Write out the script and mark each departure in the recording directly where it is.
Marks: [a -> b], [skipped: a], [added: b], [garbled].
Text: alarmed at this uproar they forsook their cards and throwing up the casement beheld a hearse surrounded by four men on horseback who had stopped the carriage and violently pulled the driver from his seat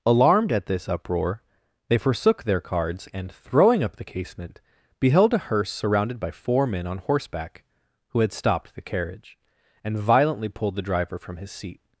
alarmed at this uproar they forsook their cards and throwing up the casement beheld a hearse surrounded by four men on horseback who had stopped the carriage and violently pulled the driver from his seat